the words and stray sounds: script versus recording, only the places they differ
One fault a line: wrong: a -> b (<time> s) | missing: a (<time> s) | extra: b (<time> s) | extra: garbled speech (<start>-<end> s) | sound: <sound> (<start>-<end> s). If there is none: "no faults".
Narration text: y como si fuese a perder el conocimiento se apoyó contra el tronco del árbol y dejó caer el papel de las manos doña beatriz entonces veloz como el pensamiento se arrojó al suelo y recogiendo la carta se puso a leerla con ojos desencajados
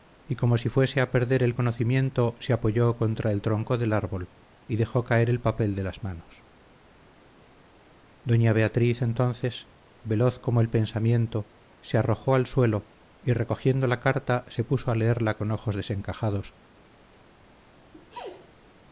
sound: sneeze (17.9-18.5 s)